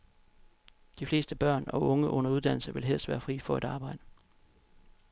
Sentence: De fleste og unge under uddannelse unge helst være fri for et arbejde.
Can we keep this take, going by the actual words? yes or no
no